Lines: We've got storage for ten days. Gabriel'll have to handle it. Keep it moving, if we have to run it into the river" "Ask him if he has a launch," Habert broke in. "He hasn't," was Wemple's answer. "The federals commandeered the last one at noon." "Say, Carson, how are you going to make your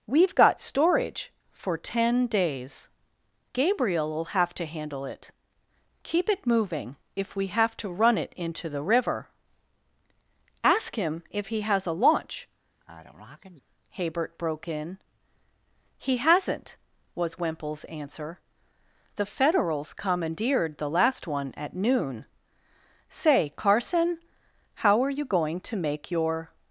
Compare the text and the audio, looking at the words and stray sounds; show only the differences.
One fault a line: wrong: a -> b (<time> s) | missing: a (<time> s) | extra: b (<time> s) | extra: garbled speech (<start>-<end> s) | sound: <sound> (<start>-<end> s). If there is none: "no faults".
sound: sneeze (12.8-13.6 s)